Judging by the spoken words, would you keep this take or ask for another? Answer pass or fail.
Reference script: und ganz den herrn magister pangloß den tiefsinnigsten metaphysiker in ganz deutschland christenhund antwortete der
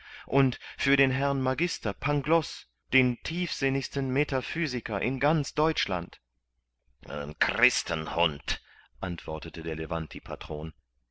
fail